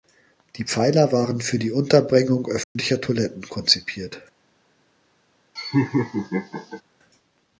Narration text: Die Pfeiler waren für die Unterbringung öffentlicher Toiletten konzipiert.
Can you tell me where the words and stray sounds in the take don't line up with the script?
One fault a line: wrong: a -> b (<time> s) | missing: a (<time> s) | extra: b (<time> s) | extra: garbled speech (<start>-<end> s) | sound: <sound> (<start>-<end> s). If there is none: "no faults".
sound: dropout (2.6-2.8 s)
sound: laugh (5.6-6.8 s)